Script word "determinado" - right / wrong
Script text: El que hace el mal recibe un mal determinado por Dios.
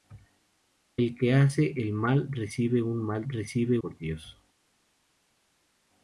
wrong